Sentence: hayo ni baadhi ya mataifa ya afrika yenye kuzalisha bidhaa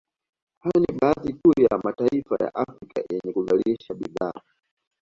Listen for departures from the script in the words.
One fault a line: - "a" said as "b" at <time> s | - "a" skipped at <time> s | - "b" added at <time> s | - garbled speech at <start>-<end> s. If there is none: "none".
- "tu" added at 1.3 s